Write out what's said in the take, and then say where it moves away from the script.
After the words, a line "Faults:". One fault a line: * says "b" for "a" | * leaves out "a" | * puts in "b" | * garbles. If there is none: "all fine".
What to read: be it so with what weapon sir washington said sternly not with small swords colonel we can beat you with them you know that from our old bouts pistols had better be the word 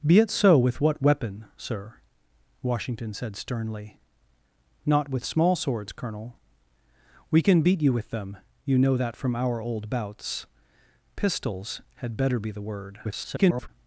be it so with what weapon sir washington said sternly not with small swords colonel we can beat you with them you know that from our old bouts pistols had better be the word [garbled]
Faults:
* garbles